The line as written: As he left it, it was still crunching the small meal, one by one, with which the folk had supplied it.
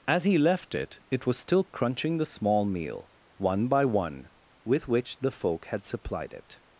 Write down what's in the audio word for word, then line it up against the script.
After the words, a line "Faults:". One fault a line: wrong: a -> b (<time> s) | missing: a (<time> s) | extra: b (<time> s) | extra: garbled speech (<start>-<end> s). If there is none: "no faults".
As he left it, it was still crunching the small meal, one by one, with which the folk had supplied it.
Faults:
no faults